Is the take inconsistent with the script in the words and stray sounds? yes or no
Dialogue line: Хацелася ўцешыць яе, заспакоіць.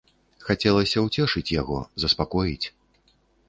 yes